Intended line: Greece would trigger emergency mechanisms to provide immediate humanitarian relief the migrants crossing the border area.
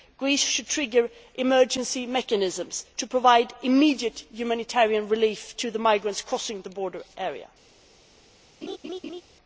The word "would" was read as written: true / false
false